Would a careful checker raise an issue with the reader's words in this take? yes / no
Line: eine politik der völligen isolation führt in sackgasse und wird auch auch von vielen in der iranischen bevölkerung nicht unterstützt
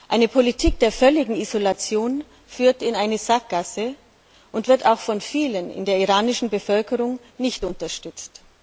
yes